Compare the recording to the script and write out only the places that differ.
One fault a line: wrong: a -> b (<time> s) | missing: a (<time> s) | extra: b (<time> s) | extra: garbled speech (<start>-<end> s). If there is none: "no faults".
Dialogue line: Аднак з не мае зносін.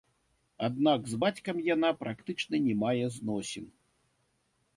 extra: бацькам яна практычна (1.2 s)